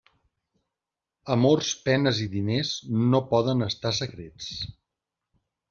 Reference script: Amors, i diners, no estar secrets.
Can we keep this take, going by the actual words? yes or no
no